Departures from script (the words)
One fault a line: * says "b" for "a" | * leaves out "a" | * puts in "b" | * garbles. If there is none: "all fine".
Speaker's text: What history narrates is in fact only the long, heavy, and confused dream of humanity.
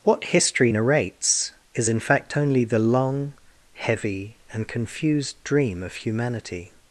all fine